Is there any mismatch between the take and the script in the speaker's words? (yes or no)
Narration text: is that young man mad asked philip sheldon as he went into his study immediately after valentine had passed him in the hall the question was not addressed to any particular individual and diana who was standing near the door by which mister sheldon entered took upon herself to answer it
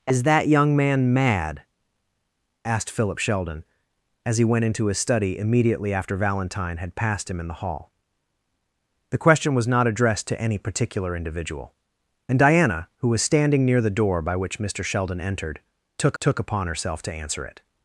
yes